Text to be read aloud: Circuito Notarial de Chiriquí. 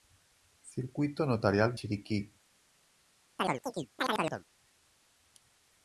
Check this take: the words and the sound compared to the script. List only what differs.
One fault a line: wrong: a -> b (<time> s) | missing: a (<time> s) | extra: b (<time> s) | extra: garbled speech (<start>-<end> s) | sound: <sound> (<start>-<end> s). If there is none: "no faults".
missing: de (1.8 s)
sound: chirp (3.4-4.4 s)